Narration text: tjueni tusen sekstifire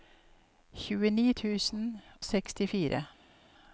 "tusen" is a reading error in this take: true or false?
false